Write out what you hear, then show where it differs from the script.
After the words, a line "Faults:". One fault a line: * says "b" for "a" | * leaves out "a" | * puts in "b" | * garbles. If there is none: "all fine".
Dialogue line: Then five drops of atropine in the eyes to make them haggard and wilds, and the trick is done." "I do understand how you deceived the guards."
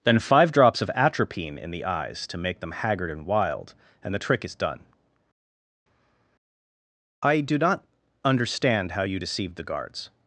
Then five drops of atropine in the eyes to make them haggard and wild, and the trick is done." "I do not understand how you deceived the guards."
Faults:
* says "wild" for "wilds"
* puts in "not"